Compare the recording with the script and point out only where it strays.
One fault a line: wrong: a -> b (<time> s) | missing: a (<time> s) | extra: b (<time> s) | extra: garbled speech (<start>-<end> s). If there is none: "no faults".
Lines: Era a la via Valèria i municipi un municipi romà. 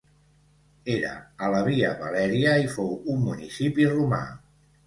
wrong: municipi -> fou (2.8 s)